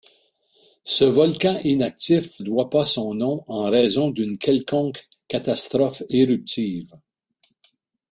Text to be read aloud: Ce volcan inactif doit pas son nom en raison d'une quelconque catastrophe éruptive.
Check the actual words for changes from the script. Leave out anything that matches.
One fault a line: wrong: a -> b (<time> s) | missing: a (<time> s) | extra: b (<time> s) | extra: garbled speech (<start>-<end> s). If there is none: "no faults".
no faults